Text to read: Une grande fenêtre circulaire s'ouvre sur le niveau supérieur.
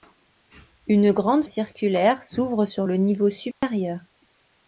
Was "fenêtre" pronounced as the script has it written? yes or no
no